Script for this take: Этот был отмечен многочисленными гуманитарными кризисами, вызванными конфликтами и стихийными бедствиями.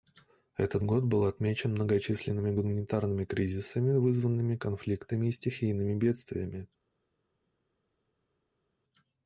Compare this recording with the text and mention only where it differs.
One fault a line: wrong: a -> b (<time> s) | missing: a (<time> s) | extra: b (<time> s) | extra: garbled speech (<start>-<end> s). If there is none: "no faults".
extra: год (0.8 s)